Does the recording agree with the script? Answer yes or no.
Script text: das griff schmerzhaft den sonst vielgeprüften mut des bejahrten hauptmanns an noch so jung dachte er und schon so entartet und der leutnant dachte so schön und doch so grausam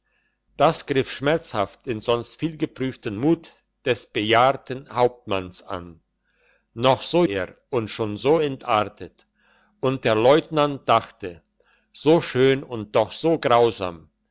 no